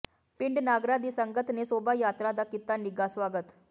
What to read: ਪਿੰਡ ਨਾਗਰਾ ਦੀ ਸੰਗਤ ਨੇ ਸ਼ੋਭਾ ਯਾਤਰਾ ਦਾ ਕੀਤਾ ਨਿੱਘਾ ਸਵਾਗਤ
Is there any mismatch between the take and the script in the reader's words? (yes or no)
no